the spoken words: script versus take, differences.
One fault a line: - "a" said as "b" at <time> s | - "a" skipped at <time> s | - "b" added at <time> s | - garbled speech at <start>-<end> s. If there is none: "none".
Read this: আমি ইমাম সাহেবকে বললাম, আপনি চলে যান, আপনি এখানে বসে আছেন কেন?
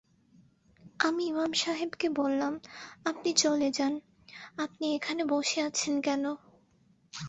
none